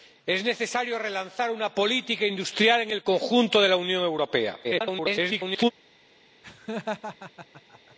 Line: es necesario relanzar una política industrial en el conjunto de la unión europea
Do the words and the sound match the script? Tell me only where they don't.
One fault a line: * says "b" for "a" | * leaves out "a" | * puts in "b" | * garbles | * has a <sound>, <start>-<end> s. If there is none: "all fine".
* garbles
* has a laugh, 6.4-8.0 s